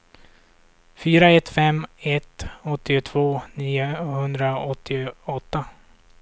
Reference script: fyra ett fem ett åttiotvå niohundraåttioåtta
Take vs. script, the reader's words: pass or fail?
pass